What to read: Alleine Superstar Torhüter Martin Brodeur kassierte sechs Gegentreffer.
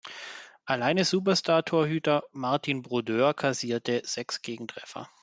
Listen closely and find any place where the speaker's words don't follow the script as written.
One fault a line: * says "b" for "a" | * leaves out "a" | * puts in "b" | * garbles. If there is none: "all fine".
all fine